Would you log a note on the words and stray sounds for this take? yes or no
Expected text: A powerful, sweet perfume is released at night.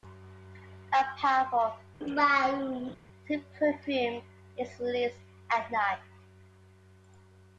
yes